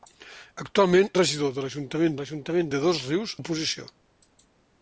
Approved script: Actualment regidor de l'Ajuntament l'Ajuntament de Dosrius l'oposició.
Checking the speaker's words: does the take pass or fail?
pass